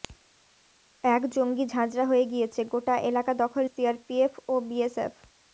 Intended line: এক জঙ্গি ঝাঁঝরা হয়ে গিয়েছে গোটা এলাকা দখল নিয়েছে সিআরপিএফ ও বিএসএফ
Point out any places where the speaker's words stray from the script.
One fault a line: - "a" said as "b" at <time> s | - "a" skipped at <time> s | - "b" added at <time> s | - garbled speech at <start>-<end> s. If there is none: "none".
- "নিয়েছে" skipped at 3.6 s